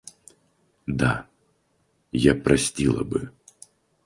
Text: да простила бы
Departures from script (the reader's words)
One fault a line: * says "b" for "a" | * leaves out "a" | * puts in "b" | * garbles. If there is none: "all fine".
* puts in "я"